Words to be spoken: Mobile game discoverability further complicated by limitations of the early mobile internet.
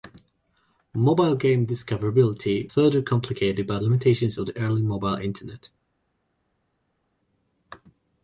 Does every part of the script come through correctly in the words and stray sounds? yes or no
yes